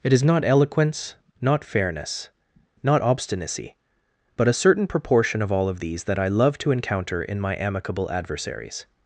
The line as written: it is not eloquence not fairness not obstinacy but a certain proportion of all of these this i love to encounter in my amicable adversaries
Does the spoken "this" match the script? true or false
false